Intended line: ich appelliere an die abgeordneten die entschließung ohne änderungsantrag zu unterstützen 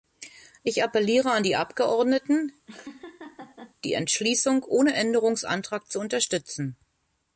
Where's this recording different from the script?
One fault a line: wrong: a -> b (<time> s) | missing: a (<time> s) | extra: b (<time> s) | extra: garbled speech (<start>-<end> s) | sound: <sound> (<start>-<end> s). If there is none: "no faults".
sound: laugh (2.7-3.8 s)